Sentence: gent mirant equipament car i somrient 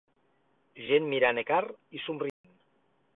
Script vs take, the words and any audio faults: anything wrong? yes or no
yes